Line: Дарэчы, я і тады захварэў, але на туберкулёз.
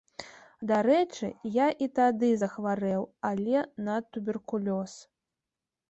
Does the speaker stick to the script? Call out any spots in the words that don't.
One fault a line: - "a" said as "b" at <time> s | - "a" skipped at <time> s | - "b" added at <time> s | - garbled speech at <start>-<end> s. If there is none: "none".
none